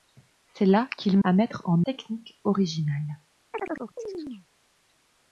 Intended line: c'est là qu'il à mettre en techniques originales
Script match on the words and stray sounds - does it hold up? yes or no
no